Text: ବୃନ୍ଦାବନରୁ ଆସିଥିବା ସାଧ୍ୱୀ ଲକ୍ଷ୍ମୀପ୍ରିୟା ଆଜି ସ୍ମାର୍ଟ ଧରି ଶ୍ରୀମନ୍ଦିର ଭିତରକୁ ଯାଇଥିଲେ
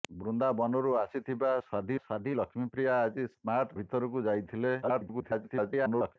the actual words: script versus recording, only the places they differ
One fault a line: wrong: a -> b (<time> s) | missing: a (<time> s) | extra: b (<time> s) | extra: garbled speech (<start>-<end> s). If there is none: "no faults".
extra: ସାଧ୍ୱୀ (2.0 s)
missing: ଧରି ଶ୍ରୀମନ୍ଦିର (3.8 s)
extra: garbled speech (4.8-6.2 s)